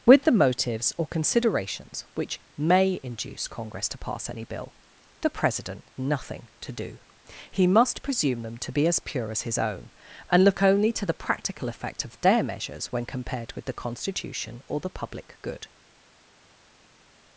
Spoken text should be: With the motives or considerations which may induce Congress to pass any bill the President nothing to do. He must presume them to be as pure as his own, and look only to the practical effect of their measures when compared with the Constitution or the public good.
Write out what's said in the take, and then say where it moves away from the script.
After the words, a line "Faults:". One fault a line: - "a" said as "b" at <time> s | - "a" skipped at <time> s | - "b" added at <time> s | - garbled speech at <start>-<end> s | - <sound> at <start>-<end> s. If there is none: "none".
With the motives or considerations which may induce Congress to pass any bill the President nothing to do. He must presume them to be as pure as his own, and look only to the practical effect of their measures when compared with the Constitution or the public good.
Faults:
none